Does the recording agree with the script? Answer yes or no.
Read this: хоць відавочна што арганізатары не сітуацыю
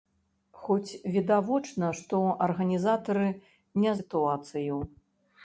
yes